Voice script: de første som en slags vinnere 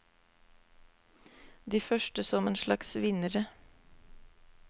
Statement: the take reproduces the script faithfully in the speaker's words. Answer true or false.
true